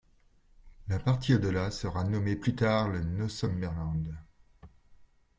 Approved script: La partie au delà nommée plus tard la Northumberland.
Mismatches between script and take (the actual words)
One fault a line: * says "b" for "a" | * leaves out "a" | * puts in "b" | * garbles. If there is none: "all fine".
* puts in "sera"
* says "le" for "la"